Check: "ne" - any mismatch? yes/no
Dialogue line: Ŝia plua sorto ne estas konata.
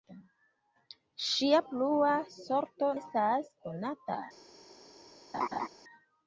yes